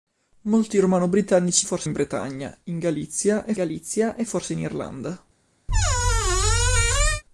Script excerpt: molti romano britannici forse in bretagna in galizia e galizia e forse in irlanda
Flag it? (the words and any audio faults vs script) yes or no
yes